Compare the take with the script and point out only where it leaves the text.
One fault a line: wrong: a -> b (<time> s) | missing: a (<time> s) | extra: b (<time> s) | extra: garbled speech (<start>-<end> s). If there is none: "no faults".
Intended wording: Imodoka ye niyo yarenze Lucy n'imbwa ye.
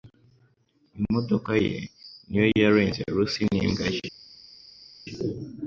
no faults